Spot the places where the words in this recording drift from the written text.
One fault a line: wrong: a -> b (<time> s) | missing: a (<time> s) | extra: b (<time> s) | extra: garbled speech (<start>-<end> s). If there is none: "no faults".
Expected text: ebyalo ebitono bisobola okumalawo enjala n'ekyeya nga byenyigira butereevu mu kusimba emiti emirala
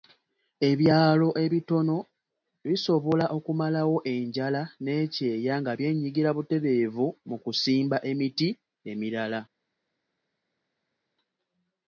no faults